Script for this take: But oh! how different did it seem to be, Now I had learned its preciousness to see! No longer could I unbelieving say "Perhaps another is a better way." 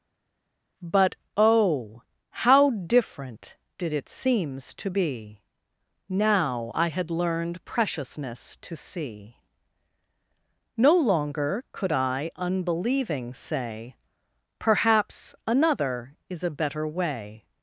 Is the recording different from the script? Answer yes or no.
yes